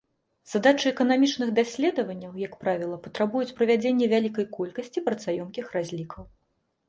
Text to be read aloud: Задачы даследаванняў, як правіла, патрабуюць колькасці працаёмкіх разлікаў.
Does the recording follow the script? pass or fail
fail